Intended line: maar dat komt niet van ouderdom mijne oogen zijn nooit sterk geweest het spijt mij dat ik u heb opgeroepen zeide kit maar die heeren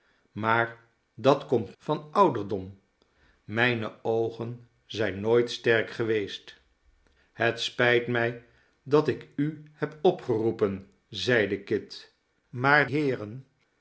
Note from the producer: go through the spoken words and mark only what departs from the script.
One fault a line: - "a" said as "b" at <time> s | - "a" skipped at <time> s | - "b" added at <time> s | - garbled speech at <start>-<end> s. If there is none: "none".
- "niet" skipped at 1.8 s
- "die" skipped at 12.9 s